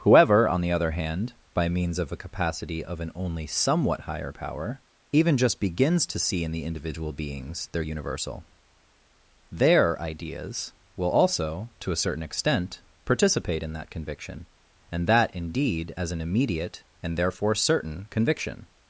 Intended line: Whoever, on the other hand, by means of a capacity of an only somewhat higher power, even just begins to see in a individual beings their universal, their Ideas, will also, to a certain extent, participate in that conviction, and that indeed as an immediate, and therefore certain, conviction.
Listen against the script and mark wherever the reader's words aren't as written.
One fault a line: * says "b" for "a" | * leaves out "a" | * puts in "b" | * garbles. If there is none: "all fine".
* says "the" for "a"